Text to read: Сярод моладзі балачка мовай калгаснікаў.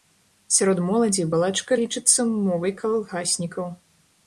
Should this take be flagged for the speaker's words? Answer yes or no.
yes